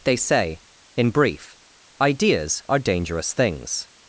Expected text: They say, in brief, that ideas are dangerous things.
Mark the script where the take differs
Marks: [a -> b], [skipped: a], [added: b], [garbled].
They say, in brief, [skipped: that] ideas are dangerous things.